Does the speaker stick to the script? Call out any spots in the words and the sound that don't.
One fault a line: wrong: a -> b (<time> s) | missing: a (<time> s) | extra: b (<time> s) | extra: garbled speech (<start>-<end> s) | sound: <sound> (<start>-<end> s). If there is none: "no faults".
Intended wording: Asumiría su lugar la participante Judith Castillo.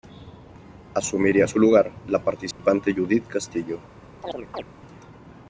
sound: dropout (2.5-2.6 s)
sound: chirp (4.2-4.6 s)